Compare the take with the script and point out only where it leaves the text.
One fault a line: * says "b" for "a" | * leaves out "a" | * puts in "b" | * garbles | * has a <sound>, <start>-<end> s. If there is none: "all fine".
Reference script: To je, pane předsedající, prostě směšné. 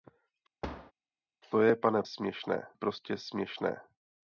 * has a thud, 0.6-0.9 s
* says "směšné" for "předsedající"